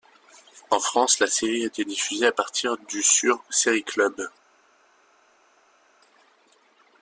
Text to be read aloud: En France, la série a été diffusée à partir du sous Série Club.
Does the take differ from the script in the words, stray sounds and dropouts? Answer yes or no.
yes